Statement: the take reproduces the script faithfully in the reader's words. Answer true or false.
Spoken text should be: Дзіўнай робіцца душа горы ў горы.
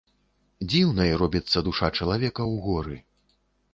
false